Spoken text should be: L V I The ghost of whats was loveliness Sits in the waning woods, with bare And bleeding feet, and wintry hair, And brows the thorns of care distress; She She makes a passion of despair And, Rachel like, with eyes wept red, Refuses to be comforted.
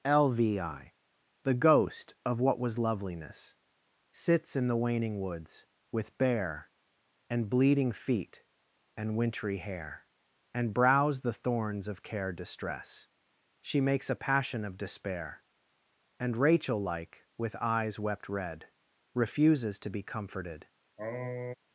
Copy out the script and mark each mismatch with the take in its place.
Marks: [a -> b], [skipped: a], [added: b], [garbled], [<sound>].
L V I The ghost of [whats -> what] was loveliness Sits in the waning woods, with bare And bleeding feet, and wintry hair, And brows the thorns of care distress; She [skipped: She] makes a passion of despair And, Rachel like, with eyes wept red, Refuses to be comforted. [sniff]